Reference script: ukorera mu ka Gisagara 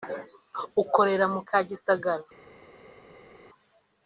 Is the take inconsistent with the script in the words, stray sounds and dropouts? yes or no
no